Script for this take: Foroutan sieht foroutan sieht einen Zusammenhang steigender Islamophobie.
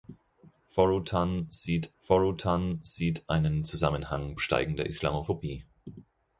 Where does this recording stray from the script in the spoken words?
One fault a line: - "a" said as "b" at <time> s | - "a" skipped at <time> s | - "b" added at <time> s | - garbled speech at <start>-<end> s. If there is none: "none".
none